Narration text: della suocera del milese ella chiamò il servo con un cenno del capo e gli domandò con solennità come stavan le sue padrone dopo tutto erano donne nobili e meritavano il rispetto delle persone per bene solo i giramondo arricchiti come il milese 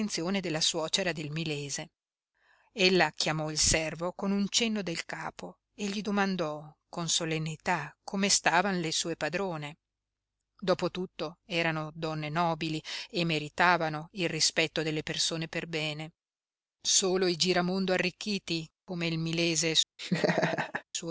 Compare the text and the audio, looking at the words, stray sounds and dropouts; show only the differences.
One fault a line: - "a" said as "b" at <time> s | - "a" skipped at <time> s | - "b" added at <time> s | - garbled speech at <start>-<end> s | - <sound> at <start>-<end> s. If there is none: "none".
- laugh at 20.0-20.8 s